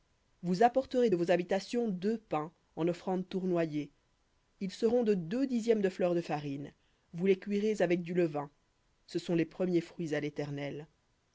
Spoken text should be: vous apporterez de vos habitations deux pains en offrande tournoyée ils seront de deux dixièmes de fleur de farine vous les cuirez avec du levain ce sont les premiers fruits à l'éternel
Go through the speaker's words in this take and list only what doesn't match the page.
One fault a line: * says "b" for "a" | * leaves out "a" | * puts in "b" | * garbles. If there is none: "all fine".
all fine